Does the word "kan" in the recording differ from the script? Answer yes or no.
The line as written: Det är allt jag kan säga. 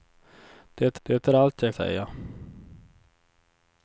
yes